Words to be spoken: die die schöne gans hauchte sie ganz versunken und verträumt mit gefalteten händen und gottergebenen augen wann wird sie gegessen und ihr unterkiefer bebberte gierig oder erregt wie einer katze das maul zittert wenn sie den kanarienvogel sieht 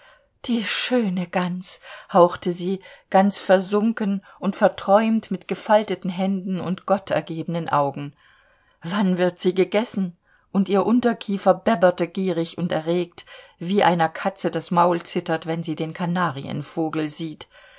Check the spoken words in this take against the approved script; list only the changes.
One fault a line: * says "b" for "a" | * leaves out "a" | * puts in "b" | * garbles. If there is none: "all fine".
* leaves out "die"
* says "und" for "oder"